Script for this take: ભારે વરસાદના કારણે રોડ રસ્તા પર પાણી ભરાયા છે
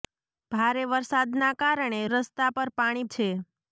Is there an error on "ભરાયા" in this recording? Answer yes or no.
yes